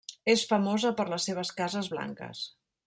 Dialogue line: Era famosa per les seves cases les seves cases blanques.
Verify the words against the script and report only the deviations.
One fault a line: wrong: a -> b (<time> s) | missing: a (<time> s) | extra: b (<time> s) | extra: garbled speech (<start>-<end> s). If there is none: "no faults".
wrong: Era -> És (0.3 s)
missing: les seves cases (1.9 s)